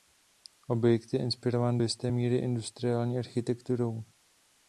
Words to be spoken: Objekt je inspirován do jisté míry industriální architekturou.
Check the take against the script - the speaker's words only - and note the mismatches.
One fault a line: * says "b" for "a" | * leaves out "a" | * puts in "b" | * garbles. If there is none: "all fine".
all fine